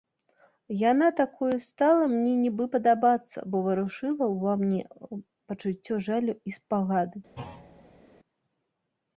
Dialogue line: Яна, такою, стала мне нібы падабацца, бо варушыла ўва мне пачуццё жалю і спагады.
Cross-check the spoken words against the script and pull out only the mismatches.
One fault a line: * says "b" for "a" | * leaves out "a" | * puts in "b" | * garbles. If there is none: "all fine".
all fine